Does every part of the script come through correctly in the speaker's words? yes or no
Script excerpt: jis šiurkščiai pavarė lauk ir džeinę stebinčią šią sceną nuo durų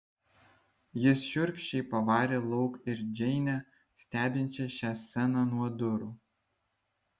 yes